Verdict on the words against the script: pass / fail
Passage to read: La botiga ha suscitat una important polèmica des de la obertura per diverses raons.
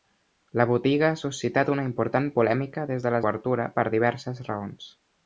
pass